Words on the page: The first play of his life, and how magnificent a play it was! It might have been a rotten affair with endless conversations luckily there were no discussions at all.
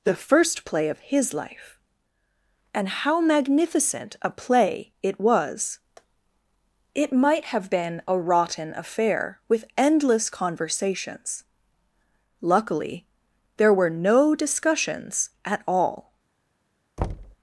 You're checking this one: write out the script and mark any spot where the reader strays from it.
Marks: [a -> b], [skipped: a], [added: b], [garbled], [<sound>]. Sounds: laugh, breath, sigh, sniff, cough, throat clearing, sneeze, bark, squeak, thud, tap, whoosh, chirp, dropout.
The first play of his life, and how magnificent a play it was! It might have been a rotten affair with endless conversations luckily there were no discussions at all. [thud]